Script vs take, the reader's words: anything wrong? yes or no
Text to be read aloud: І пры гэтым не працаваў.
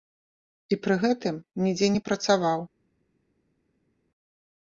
yes